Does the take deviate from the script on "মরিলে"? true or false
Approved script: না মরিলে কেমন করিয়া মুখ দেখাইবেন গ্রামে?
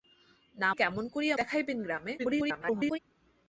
true